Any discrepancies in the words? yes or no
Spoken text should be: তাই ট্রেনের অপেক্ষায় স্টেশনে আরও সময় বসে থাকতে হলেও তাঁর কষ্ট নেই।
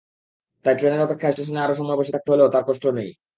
no